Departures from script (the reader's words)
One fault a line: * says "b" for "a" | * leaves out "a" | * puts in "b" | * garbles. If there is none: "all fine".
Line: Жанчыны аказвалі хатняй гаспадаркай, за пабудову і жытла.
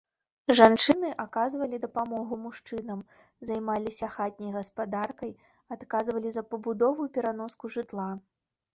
* puts in "дапамогу мужчынам займаліся"
* puts in "адказвалі"
* puts in "пераноску"